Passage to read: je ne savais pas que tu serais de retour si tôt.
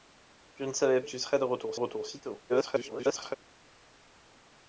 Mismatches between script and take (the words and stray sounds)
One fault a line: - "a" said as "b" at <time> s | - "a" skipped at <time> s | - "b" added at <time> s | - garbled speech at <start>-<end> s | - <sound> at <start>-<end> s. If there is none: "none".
- "pas que" skipped at 1.0 s
- "retour" added at 1.7 s
- garbled speech at 2.5-3.4 s